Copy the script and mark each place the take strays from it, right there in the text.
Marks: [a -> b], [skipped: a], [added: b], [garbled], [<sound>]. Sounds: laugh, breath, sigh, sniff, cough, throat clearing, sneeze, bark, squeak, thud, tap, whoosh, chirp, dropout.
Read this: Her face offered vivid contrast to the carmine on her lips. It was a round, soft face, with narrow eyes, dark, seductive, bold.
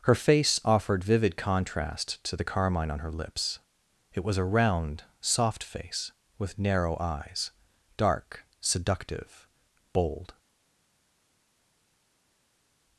Her face offered vivid contrast to the carmine on her lips. It was a round, soft face, with narrow eyes, dark, seductive, bold.